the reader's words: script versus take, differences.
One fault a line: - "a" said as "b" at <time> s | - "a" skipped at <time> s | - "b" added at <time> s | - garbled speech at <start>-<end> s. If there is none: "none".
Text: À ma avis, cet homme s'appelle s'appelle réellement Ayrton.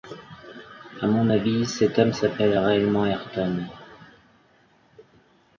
- "ma" said as "mon" at 1.1 s
- "s'appelle" skipped at 2.6 s